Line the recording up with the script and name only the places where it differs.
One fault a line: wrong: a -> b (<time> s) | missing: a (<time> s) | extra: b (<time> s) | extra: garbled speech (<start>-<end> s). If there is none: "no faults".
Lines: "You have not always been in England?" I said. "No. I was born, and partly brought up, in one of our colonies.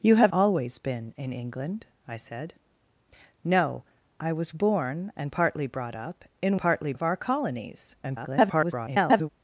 missing: not (0.3 s)
wrong: one -> partly (6.6 s)
extra: garbled speech (8.0-9.3 s)